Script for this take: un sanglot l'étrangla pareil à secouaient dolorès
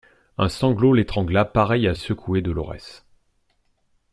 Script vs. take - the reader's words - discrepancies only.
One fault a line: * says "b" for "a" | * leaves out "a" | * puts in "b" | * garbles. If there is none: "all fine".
all fine